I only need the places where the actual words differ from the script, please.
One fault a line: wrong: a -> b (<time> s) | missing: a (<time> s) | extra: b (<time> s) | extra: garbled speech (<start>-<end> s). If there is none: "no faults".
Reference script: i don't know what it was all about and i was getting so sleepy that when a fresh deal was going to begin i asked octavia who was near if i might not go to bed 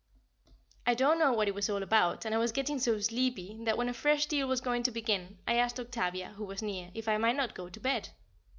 no faults